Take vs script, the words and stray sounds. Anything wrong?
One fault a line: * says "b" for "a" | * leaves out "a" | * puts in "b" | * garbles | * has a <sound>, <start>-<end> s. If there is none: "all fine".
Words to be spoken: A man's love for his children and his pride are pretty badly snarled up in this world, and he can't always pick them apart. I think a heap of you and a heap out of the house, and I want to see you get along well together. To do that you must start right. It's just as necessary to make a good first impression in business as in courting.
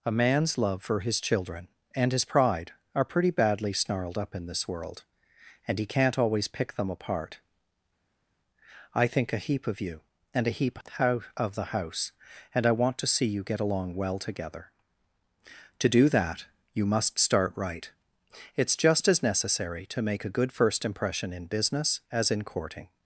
all fine